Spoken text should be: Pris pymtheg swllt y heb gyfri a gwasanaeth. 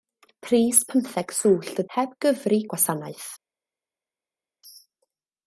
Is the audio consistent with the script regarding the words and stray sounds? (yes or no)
yes